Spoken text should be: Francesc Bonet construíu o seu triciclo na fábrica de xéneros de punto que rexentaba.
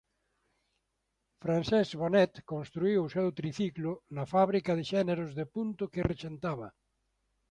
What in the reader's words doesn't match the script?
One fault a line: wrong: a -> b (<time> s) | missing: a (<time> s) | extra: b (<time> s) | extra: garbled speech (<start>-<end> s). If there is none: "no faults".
no faults